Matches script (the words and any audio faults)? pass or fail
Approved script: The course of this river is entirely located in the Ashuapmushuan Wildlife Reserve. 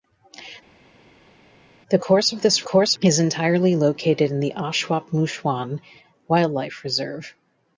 fail